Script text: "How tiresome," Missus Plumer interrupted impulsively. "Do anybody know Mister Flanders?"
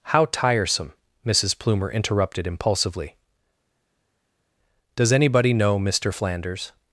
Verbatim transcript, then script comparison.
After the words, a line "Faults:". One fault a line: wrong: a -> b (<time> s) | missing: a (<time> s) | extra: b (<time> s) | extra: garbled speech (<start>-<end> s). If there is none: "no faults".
"How tiresome," Missus Plumer interrupted impulsively. "Does anybody know Mister Flanders?"
Faults:
wrong: Do -> Does (5.0 s)